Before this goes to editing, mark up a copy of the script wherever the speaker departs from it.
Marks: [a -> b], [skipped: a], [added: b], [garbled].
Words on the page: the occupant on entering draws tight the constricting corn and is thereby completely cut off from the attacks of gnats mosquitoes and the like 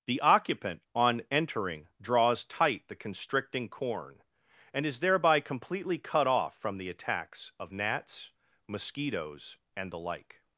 the occupant on entering draws tight the constricting corn and is thereby completely cut off from the attacks of gnats mosquitoes and the like